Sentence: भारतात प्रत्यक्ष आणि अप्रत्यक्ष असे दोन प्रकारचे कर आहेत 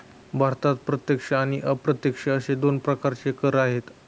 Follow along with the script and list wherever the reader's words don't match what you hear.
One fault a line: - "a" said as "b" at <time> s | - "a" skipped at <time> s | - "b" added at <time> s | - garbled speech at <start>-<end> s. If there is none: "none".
none